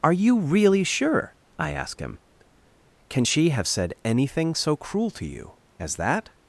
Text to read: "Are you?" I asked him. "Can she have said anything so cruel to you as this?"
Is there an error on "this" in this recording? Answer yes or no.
yes